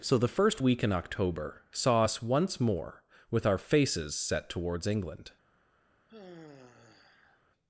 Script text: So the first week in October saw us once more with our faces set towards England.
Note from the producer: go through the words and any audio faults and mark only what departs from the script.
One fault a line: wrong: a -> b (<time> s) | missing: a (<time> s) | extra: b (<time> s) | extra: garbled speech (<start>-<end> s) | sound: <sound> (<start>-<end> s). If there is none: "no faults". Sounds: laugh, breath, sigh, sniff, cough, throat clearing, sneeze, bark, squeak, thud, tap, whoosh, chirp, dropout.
sound: sigh (6.1-7.4 s)